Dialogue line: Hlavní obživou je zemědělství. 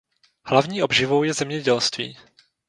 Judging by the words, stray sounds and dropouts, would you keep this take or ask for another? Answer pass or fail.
pass